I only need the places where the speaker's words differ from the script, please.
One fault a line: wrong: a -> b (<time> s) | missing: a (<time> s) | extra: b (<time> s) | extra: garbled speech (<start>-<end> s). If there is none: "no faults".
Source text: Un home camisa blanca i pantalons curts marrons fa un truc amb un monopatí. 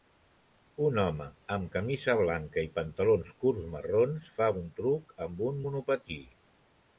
extra: amb (1.6 s)